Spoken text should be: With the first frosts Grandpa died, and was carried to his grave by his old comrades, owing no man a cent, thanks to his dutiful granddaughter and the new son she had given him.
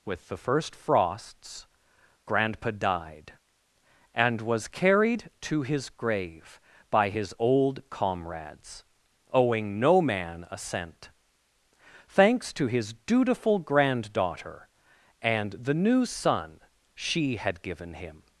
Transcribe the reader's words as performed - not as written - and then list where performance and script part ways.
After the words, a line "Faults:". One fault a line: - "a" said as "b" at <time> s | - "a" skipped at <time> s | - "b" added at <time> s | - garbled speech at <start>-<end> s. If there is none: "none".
With the first frosts Grandpa died, and was carried to his grave by his old comrades, owing no man a cent, thanks to his dutiful granddaughter and the new son she had given him.
Faults:
none